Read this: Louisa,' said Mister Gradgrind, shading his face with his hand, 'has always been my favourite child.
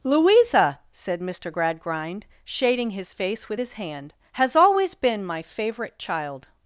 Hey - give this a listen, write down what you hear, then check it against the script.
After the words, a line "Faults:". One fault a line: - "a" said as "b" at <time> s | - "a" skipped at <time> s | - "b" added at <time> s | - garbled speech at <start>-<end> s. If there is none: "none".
Louisa,' said Mister Gradgrind, shading his face with his hand, 'has always been my favourite child.
Faults:
none